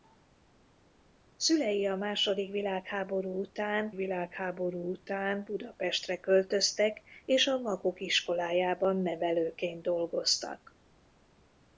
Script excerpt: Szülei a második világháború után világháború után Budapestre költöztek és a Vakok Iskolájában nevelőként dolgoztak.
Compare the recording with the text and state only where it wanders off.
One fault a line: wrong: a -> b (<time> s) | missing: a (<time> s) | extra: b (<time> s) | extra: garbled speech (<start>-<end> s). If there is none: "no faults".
no faults